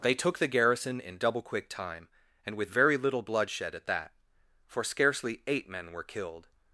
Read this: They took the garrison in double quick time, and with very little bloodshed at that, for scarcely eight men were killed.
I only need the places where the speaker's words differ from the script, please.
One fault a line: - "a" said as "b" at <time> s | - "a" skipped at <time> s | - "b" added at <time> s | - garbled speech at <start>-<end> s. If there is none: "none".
none